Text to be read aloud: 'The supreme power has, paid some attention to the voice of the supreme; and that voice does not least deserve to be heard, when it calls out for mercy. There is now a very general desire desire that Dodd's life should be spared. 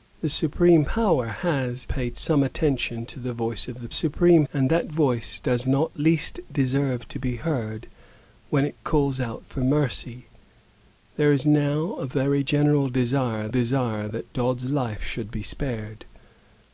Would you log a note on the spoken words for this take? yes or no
no